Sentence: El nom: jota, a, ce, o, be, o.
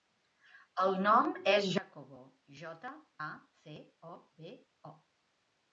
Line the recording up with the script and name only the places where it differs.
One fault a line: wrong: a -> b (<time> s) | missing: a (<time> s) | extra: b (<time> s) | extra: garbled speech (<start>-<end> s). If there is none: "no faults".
extra: és Jacobo (1.5 s)